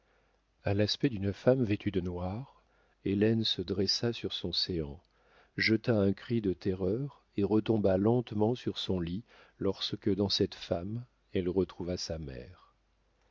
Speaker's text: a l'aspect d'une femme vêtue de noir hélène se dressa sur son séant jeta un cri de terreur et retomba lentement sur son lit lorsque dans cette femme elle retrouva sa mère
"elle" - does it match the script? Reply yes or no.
yes